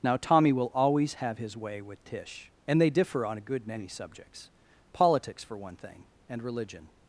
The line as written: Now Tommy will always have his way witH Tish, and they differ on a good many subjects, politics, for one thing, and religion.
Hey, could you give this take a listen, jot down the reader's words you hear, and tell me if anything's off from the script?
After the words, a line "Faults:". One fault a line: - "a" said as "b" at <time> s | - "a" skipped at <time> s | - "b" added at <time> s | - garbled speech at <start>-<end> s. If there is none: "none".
Now Tommy will always have his way witH Tish, and they differ on a good many subjects, politics, for one thing, and religion.
Faults:
none